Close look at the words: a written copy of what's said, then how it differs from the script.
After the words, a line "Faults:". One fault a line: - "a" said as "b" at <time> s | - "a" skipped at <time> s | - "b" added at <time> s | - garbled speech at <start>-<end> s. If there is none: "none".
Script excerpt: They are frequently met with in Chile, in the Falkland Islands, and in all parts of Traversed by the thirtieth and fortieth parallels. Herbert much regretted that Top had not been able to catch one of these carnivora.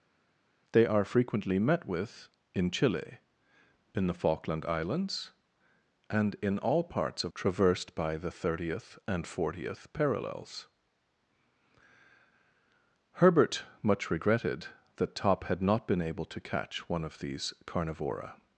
They are frequently met with in Chile, in the Falkland Islands, and in all parts of Traversed by the thirtieth and fortieth parallels. Herbert much regretted that Top had not been able to catch one of these carnivora.
Faults:
none